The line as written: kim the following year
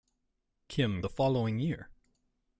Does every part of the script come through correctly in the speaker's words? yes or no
yes